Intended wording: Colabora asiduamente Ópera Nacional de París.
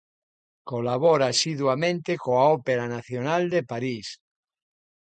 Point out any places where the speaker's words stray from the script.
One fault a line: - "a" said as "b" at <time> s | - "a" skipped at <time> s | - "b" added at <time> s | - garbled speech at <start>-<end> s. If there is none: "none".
- "coa" added at 2.2 s